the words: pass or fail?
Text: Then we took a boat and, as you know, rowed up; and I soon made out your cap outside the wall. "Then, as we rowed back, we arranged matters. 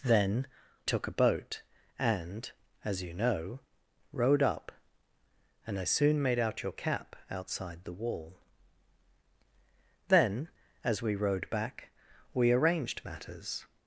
fail